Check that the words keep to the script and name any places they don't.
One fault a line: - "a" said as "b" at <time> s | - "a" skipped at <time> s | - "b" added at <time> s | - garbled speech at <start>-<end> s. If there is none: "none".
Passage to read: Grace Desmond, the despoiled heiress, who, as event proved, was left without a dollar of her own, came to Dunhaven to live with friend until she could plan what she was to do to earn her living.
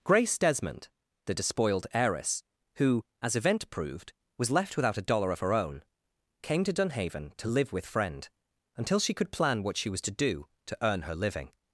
none